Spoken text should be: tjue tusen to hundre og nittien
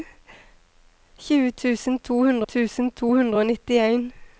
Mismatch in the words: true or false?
true